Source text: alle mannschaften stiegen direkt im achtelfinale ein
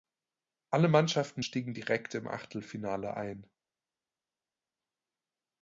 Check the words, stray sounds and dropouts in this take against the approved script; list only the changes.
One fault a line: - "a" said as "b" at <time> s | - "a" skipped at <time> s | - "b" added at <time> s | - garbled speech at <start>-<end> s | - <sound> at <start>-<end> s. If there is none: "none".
none